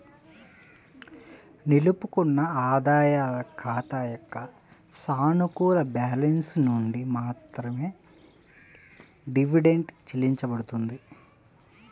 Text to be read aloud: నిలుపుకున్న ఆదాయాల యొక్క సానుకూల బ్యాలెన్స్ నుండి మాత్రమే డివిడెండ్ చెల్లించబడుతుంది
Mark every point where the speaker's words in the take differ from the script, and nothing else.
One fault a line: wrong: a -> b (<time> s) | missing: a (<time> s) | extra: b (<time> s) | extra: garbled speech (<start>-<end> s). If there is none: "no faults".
extra: ఖాతా (3.6 s)